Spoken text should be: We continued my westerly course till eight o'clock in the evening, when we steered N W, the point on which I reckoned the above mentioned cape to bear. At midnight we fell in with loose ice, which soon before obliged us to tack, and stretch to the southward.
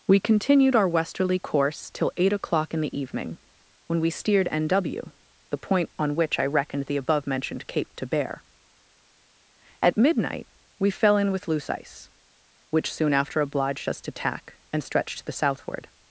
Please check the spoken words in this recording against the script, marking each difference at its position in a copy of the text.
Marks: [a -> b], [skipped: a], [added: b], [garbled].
We continued [my -> our] westerly course till eight o'clock in the evening, when we steered N W, the point on which I reckoned the above mentioned cape to bear. At midnight we fell in with loose ice, which soon [before -> after] obliged us to tack, and stretch to the southward.